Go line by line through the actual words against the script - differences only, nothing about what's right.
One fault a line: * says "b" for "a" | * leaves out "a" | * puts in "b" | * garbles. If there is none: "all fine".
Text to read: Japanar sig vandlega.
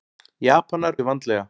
all fine